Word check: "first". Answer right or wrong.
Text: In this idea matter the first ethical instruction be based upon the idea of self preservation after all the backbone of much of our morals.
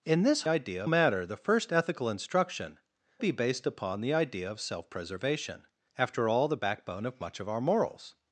right